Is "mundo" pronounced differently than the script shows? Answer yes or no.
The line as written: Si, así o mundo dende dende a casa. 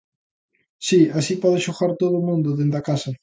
no